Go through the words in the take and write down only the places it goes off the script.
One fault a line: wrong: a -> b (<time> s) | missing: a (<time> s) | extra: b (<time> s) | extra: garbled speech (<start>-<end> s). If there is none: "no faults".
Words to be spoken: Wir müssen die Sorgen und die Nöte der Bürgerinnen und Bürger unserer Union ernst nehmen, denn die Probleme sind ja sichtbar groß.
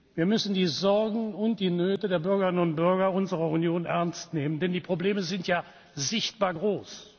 no faults